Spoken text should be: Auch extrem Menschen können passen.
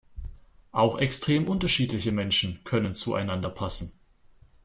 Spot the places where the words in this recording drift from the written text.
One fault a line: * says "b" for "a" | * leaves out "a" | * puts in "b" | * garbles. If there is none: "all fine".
* puts in "unterschiedliche"
* puts in "zueinander"